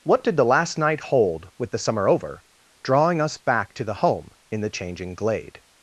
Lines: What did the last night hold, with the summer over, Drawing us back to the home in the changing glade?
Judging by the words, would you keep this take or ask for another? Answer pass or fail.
pass